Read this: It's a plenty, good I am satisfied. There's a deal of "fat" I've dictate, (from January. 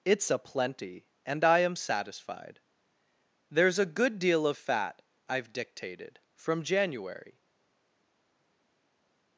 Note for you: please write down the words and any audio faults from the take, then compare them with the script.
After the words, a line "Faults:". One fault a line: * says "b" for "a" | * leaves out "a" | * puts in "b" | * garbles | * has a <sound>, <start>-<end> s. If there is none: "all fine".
It's a plenty, and I am satisfied. There's a good deal of "fat" I've dictated, (from January.
Faults:
* says "and" for "good"
* puts in "good"
* says "dictated" for "dictate"